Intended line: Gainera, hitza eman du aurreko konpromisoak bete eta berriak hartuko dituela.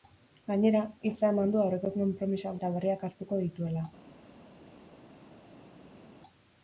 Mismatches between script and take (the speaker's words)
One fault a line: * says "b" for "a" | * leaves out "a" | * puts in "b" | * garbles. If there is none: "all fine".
* leaves out "bete"